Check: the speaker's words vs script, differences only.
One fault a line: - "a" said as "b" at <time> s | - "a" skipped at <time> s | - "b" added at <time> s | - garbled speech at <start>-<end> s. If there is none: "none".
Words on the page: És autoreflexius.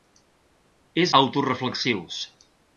none